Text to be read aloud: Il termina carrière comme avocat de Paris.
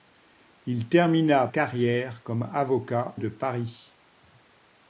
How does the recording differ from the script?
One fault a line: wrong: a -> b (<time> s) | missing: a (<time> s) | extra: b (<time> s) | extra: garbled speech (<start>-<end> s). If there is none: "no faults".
no faults